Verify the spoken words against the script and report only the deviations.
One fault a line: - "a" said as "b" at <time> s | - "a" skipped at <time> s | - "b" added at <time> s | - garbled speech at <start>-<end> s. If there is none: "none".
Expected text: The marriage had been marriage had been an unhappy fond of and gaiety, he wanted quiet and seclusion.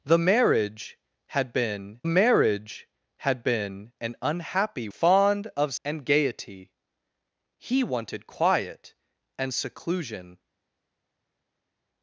none